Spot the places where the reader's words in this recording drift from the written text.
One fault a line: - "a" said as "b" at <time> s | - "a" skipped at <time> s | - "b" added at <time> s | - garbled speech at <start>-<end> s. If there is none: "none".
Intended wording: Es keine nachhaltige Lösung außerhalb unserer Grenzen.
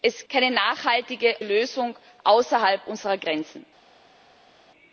none